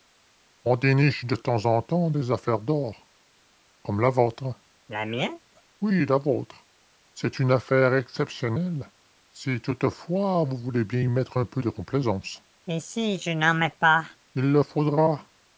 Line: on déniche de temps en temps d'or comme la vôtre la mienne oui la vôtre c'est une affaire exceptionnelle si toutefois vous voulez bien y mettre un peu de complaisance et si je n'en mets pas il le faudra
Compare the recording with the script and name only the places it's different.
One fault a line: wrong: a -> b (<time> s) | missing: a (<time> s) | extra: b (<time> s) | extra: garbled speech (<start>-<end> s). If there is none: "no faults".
extra: des affaires (2.1 s)